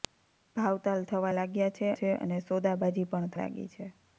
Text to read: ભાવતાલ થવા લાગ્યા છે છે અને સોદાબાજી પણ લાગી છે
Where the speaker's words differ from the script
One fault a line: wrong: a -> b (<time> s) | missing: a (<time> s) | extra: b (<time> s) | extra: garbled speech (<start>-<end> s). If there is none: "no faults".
no faults